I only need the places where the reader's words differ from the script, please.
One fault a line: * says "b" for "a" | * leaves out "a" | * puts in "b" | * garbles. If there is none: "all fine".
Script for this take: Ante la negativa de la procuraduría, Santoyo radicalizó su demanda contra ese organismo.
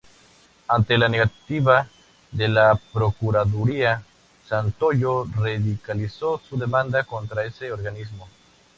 all fine